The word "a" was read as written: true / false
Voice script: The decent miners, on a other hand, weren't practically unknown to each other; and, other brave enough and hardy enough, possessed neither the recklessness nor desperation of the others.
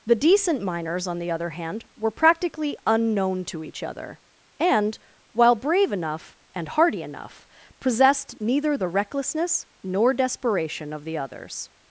false